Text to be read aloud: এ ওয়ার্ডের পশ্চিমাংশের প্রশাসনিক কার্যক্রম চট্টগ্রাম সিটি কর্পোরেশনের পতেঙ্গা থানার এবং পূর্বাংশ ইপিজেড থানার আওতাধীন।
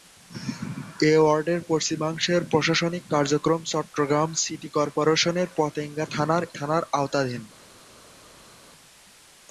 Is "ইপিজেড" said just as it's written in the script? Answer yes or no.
no